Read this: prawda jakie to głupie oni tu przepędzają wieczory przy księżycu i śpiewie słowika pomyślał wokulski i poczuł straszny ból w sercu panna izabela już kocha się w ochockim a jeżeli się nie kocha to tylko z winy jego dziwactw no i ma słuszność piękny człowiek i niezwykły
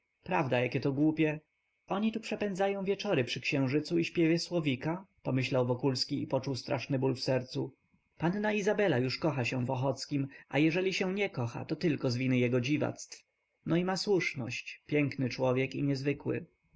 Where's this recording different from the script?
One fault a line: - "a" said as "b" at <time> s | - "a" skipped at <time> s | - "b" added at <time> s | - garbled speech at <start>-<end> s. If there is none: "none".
none